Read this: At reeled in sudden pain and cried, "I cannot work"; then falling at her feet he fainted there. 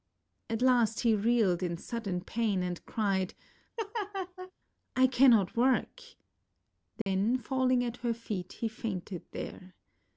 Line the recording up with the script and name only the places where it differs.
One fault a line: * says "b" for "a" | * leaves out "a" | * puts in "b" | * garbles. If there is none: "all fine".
* puts in "last he"